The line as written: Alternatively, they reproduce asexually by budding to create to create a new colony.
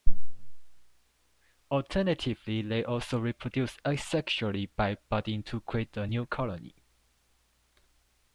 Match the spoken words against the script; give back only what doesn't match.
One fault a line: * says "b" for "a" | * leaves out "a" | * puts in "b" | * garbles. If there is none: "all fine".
* puts in "also"
* leaves out "to create"